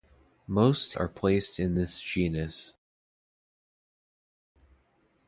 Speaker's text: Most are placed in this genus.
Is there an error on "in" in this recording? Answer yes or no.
no